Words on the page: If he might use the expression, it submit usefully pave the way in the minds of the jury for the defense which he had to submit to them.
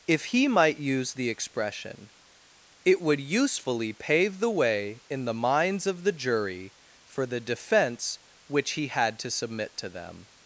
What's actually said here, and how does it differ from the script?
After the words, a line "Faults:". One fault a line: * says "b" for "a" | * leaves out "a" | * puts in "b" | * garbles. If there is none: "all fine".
If he might use the expression, it would usefully pave the way in the minds of the jury for the defense which he had to submit to them.
Faults:
* says "would" for "submit"